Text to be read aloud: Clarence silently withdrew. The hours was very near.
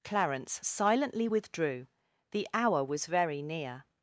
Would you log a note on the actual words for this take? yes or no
yes